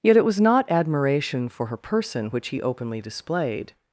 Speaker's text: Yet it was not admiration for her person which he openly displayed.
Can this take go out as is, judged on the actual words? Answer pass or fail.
pass